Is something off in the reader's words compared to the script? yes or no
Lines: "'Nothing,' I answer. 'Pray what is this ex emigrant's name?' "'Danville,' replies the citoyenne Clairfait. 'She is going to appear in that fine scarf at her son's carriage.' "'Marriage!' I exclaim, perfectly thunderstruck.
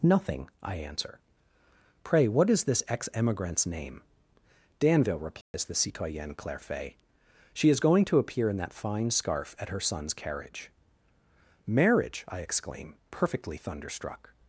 no